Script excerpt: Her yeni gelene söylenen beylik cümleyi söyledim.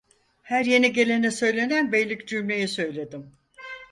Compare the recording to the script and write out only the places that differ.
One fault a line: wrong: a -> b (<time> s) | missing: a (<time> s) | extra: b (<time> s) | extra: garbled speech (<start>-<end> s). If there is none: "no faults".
no faults